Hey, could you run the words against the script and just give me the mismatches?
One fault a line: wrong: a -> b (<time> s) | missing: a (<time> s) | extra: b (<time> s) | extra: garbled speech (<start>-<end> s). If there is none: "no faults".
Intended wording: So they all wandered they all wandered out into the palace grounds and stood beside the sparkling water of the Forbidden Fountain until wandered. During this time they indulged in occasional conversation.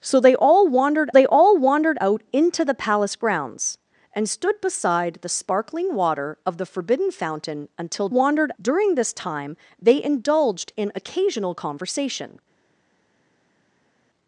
no faults